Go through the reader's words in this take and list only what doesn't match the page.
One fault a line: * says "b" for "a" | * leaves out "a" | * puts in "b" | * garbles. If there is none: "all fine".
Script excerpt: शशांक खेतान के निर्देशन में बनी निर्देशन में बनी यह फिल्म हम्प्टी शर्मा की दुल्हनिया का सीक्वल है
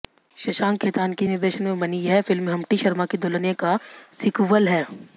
* leaves out "निर्देशन में बनी"